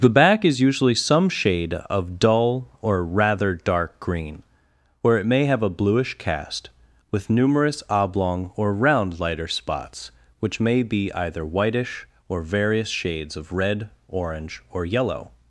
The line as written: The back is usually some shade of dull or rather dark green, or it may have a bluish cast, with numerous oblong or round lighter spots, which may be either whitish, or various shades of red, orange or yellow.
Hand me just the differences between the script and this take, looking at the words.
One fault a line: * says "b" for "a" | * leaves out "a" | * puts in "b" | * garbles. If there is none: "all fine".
all fine